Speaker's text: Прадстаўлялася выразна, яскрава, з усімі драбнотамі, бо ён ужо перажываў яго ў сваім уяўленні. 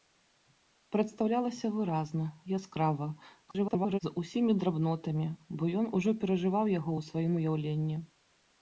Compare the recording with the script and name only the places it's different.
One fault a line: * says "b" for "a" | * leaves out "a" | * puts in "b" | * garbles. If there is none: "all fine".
* garbles